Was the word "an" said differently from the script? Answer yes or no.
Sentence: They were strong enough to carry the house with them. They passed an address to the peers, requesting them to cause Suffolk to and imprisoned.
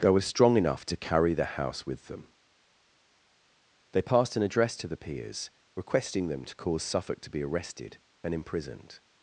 no